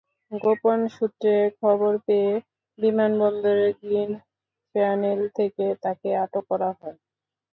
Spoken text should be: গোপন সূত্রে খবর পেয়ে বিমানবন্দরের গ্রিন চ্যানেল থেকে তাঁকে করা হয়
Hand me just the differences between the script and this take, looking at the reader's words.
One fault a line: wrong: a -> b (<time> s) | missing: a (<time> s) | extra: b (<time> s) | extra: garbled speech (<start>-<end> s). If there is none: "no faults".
extra: আটক (6.2 s)